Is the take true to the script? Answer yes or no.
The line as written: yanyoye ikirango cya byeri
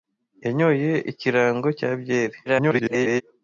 no